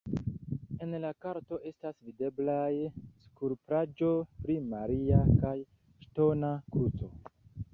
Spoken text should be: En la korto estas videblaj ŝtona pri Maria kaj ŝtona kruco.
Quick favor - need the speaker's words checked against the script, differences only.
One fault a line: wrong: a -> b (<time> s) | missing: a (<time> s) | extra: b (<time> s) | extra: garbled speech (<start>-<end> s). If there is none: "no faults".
wrong: ŝtona -> skulptaĵo (3.3 s)